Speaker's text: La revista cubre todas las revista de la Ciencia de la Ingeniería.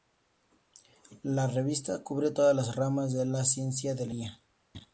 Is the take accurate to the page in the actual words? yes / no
no